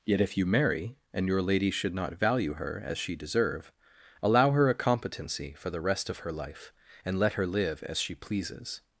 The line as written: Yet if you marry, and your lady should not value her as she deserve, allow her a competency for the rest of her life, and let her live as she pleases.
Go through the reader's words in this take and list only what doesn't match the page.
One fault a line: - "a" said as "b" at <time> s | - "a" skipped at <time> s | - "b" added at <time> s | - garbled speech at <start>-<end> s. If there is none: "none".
none